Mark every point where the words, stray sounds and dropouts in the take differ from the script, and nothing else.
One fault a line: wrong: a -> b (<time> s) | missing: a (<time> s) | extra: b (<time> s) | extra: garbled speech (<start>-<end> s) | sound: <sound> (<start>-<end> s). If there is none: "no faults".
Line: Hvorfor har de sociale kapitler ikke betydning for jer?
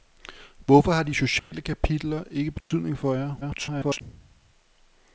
sound: dropout (1.4-1.5 s)
sound: dropout (2.6-2.7 s)
extra: garbled speech (3.4-4.0 s)